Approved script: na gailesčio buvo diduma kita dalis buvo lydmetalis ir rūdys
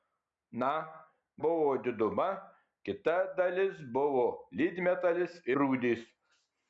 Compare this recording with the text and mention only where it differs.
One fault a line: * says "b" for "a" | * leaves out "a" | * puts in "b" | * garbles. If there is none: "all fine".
* leaves out "gailesčio"
* leaves out "ir"